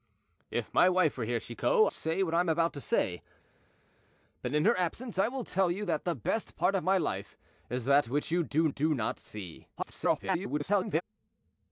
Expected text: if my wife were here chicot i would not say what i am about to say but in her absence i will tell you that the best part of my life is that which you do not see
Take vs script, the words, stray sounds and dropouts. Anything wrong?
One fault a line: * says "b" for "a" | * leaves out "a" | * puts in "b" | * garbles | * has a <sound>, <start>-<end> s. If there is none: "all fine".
* leaves out "i would not"
* puts in "do"
* garbles